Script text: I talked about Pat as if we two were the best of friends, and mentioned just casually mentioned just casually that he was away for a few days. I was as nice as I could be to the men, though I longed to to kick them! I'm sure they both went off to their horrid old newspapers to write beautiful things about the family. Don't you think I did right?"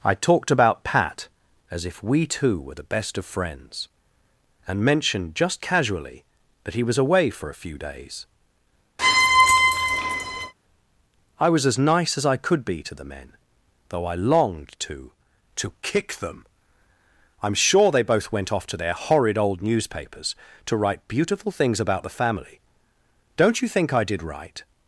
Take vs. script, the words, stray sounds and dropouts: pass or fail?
fail